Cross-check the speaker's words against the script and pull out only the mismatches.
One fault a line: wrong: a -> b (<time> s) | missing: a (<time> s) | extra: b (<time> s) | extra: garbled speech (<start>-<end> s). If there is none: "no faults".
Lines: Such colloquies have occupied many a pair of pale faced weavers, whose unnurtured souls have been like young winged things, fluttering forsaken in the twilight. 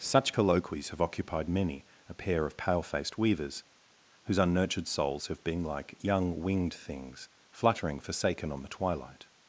wrong: in -> on (8.5 s)